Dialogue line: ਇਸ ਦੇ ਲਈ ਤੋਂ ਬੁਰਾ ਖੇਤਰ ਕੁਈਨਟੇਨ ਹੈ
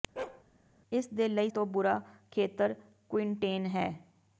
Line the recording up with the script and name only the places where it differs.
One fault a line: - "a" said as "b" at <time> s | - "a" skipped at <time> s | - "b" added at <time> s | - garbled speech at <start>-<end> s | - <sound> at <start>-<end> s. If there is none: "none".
- bark at 0.2-0.4 s